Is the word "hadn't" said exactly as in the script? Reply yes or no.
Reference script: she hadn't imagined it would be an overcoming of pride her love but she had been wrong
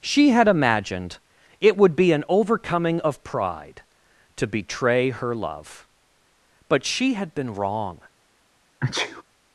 no